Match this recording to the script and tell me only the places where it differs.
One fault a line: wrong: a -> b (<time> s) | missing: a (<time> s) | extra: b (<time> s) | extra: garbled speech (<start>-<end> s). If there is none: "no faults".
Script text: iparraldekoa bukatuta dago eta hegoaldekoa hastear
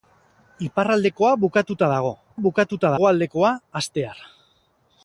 wrong: eta -> bukatuta (2.5 s)